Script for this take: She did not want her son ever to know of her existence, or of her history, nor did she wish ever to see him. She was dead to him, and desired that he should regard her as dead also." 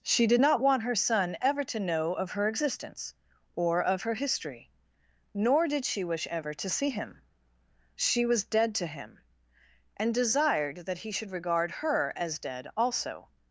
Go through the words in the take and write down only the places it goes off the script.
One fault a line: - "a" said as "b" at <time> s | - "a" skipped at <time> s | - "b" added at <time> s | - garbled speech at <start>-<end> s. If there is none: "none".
none